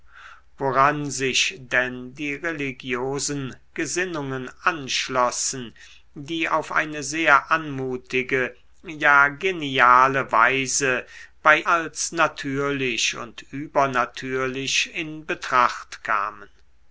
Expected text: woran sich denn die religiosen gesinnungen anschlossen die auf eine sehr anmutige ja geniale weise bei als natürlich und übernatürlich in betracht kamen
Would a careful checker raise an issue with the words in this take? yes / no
no